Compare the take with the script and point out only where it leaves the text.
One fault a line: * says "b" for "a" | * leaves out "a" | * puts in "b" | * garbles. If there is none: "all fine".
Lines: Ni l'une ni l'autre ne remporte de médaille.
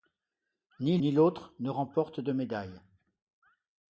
* leaves out "l'une"